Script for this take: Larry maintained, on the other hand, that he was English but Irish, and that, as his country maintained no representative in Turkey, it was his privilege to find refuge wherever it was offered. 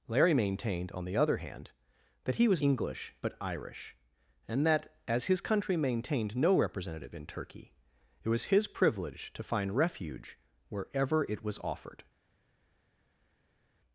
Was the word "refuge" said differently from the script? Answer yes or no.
no